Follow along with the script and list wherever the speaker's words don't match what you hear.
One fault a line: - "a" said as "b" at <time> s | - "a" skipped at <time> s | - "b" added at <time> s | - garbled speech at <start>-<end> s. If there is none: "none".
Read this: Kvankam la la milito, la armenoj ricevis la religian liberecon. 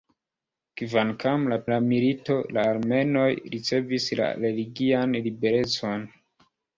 none